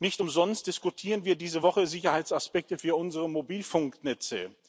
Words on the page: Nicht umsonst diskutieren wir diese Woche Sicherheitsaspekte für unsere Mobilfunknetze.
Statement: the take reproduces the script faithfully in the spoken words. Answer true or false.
true